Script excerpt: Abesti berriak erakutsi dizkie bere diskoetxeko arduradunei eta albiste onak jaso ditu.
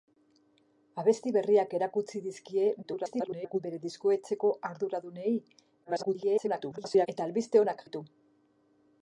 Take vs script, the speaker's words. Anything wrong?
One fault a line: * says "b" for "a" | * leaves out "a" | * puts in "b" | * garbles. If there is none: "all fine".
* garbles
* garbles
* leaves out "jaso"